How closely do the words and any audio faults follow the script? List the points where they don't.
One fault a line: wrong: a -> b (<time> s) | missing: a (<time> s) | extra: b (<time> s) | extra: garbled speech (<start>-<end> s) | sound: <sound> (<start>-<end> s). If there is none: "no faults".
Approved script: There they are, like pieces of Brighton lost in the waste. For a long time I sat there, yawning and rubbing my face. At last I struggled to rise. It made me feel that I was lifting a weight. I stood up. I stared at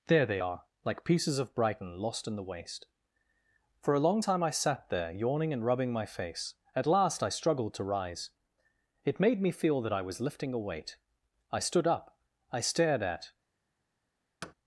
sound: thud (14.4-14.5 s)